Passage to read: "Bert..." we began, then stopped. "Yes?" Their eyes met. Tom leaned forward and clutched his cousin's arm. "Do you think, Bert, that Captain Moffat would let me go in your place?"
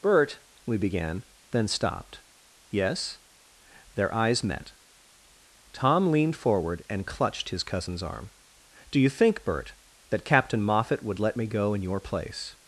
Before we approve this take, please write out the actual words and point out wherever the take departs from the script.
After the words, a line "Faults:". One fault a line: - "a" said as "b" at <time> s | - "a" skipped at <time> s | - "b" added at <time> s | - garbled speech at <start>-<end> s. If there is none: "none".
"Bert..." we began, then stopped. "Yes?" Their eyes met. Tom leaned forward and clutched his cousin's arm. "Do you think, Bert, that Captain Moffat would let me go in your place?"
Faults:
none